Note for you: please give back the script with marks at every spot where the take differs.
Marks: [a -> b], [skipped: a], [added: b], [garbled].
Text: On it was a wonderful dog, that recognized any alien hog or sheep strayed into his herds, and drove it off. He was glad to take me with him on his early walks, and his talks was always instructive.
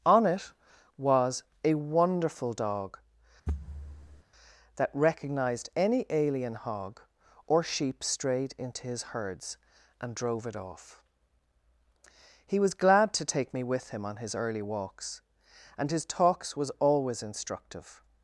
On it was a wonderful dog, that recognized any alien hog or sheep strayed into his herds, and drove it off. He was glad to take me with him on his early walks, and his talks was always instructive.